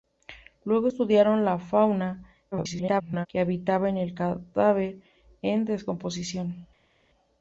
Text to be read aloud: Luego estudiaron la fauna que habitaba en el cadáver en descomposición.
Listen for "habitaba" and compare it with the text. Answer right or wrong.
right